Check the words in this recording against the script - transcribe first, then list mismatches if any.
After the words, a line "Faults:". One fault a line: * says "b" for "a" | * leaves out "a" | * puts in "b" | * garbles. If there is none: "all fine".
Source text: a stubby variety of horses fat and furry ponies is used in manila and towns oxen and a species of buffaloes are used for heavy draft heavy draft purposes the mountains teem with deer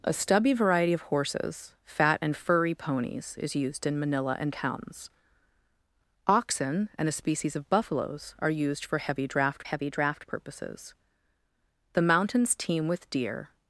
a stubby variety of horses fat and furry ponies is used in manila and towns oxen and a species of buffaloes are used for heavy draft heavy draft purposes the mountains teem with deer
Faults:
all fine